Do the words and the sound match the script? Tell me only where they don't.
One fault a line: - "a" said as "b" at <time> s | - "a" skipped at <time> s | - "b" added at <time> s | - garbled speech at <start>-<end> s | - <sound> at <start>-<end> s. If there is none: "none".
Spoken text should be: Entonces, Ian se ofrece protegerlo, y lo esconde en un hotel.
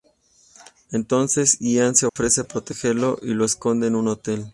- dropout at 2.1-2.2 s